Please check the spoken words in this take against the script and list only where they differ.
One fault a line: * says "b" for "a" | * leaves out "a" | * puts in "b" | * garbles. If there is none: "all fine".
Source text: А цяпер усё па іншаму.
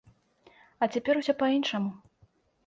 all fine